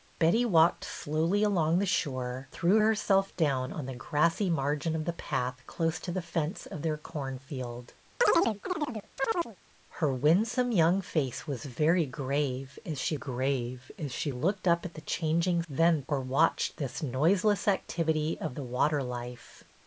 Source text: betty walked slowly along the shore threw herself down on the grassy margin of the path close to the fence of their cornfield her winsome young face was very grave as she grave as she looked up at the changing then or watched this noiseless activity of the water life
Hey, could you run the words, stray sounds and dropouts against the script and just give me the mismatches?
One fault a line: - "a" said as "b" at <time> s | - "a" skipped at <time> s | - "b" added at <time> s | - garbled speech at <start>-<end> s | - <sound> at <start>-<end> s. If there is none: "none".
- chirp at 8.2-9.6 s